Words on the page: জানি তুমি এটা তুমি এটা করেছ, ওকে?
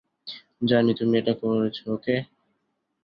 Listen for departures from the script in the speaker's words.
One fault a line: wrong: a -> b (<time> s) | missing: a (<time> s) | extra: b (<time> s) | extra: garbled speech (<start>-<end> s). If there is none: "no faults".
missing: তুমি এটা (1.3 s)